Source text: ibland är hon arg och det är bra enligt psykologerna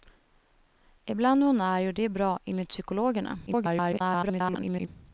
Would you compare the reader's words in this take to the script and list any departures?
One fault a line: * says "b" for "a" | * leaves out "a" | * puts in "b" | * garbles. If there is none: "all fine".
* garbles